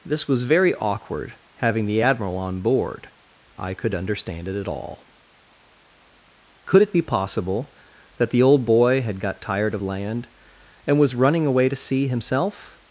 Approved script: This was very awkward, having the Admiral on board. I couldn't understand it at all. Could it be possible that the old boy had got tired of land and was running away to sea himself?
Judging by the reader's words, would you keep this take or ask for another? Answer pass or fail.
fail